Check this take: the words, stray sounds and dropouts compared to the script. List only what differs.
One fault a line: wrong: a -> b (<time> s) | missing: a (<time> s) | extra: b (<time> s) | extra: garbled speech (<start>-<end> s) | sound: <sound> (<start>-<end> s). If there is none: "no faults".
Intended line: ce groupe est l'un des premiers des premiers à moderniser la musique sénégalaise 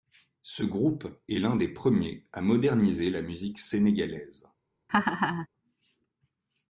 missing: des premiers (2.2 s)
sound: laugh (4.9-5.5 s)